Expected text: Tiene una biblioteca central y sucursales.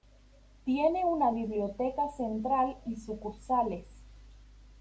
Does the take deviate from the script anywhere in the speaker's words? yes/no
no